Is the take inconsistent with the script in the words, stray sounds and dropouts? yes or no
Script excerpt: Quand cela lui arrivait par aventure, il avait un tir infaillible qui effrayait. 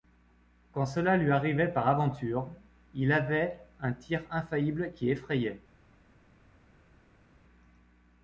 no